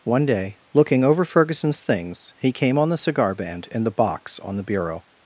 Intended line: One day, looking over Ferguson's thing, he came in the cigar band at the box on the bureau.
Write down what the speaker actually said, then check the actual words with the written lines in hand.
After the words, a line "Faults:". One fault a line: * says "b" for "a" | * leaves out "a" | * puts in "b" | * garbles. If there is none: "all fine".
One day, looking over Ferguson's things, he came on the cigar band in the box on the bureau.
Faults:
* says "things" for "thing"
* says "on" for "in"
* says "in" for "at"